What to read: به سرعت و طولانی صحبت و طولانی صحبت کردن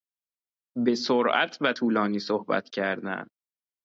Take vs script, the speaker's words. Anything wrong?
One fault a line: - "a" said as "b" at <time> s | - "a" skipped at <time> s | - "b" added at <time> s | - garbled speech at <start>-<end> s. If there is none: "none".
- "و طولانی صحبت" skipped at 2.7 s